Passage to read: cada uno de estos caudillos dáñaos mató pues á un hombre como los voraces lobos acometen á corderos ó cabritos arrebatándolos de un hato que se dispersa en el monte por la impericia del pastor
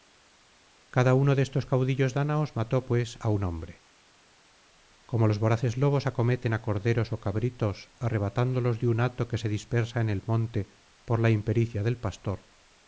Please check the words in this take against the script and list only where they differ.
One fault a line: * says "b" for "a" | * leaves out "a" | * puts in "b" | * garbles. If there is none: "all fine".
all fine